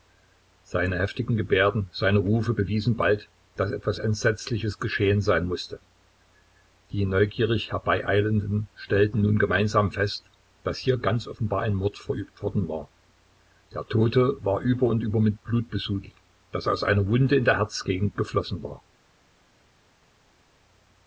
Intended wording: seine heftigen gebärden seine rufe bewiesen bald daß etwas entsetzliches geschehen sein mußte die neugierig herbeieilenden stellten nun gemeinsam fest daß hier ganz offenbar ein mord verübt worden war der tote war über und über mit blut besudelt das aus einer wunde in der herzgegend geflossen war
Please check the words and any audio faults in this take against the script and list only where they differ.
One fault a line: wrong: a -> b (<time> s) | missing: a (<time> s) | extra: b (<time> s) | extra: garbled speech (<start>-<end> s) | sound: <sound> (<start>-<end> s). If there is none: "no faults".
no faults